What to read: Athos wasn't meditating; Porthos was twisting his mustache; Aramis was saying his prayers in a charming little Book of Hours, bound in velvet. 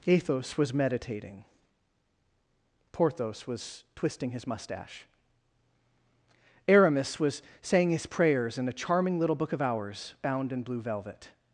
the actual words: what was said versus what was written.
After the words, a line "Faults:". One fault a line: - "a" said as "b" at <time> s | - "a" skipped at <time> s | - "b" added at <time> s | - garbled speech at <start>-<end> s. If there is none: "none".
Athos was meditating; Porthos was twisting his mustache; Aramis was saying his prayers in a charming little Book of Hours, bound in blue velvet.
Faults:
- "wasn't" said as "was" at 0.6 s
- "blue" added at 10.6 s